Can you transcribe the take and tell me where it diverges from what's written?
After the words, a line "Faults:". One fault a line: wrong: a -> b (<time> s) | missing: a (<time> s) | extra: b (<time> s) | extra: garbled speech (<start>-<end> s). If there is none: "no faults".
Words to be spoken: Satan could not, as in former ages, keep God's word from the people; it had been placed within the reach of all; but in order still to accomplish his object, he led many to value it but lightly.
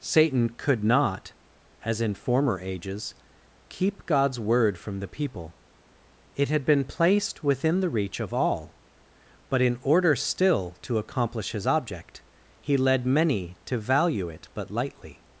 Satan could not, as in former ages, keep God's word from the people; it had been placed within the reach of all; but in order still to accomplish his object, he led many to value it but lightly.
Faults:
no faults